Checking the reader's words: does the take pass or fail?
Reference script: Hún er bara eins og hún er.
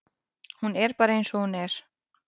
pass